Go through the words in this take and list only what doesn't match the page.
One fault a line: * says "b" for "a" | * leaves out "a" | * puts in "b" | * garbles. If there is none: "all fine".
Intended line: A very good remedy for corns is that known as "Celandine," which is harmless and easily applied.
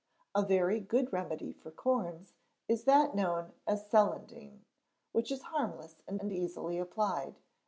* puts in "and"